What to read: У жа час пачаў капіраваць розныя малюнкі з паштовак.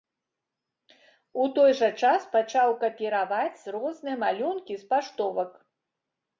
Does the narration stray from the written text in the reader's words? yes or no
yes